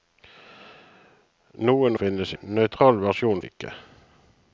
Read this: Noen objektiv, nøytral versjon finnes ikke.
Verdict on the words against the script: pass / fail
fail